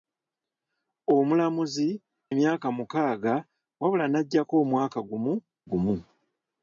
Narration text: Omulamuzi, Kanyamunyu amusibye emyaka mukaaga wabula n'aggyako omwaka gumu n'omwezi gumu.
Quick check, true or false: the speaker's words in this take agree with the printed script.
false